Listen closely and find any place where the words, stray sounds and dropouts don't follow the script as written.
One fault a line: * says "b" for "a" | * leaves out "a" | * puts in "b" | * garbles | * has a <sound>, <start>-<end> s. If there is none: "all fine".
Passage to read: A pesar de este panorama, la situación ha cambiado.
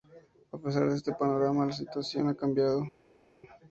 all fine